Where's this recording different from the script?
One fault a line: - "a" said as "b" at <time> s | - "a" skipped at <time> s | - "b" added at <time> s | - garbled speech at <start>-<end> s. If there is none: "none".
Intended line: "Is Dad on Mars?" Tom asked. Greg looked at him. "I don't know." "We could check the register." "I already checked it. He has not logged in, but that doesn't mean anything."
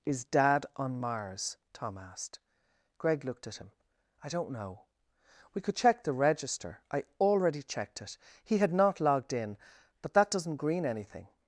- "has" said as "had" at 8.6 s
- "mean" said as "green" at 10.6 s